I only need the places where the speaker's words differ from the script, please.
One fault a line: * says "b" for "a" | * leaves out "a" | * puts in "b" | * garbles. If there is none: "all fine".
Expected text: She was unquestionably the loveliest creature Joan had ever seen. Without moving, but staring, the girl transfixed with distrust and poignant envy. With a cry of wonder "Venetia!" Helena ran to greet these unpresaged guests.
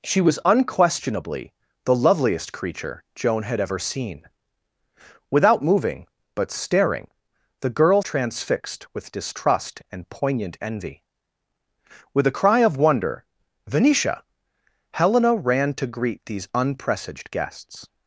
all fine